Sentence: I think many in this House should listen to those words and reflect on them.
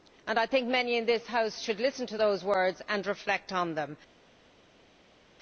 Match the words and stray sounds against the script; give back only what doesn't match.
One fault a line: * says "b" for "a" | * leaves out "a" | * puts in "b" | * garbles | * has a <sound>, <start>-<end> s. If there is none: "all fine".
all fine